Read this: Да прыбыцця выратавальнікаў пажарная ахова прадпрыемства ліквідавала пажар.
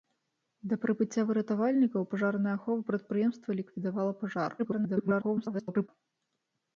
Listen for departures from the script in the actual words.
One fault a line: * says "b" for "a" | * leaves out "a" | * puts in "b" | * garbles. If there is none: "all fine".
* garbles